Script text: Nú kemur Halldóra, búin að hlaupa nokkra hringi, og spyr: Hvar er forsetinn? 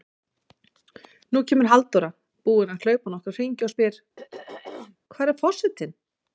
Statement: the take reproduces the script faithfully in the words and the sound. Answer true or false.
false